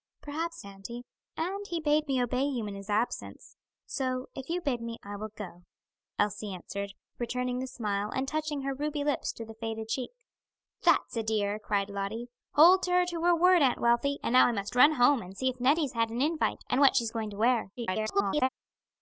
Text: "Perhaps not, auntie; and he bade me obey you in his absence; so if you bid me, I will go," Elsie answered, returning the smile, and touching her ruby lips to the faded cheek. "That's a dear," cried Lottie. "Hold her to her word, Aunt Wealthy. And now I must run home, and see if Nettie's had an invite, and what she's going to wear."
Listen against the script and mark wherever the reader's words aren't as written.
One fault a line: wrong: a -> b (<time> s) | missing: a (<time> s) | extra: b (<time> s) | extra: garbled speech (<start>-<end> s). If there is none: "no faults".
missing: not (0.7 s)
extra: garbled speech (17.8-18.5 s)